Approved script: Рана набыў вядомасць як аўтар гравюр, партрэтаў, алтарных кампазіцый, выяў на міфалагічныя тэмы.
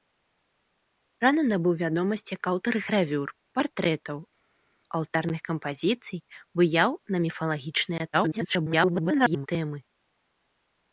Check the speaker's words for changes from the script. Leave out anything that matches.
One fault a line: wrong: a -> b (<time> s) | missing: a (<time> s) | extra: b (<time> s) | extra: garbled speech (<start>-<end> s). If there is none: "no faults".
extra: garbled speech (8.1-9.5 s)